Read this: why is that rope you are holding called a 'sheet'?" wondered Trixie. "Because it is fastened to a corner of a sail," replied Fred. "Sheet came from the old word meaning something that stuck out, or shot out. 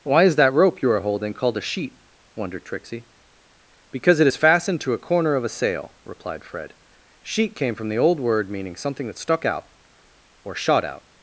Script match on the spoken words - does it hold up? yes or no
yes